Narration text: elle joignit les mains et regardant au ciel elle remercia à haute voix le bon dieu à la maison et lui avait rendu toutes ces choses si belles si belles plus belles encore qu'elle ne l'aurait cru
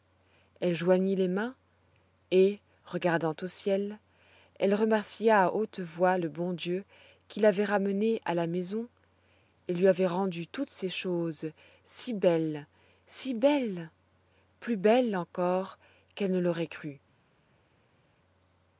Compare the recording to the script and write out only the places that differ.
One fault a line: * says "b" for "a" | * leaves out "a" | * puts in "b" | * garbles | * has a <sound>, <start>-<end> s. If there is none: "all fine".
* puts in "qui l'avait ramenée"